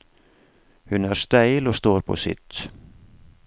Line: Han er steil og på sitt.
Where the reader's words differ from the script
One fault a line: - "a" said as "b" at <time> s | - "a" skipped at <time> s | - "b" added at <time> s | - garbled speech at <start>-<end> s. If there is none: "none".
- "Han" said as "Hun" at 0.9 s
- "står" added at 1.7 s